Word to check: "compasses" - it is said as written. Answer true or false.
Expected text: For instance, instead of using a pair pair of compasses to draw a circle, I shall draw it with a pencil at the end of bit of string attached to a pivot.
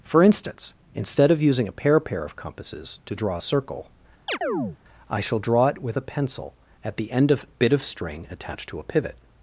true